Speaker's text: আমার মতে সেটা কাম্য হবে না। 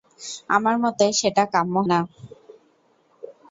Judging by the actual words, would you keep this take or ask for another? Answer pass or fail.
fail